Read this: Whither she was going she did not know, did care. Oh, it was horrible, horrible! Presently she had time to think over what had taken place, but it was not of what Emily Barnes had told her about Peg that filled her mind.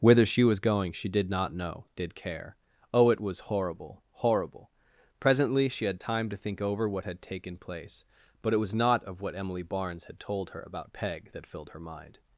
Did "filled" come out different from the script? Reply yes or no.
no